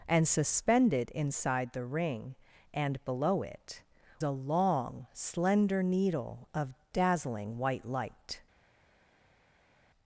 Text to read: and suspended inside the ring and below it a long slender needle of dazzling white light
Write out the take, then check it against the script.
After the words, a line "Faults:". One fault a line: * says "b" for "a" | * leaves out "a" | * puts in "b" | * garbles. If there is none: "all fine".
and suspended inside the ring and below it a long slender needle of dazzling white light
Faults:
all fine